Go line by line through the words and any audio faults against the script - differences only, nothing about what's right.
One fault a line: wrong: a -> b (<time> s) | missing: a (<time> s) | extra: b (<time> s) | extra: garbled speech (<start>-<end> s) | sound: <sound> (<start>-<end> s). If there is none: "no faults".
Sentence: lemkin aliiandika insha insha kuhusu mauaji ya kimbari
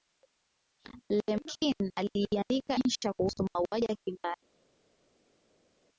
missing: insha (3.1 s)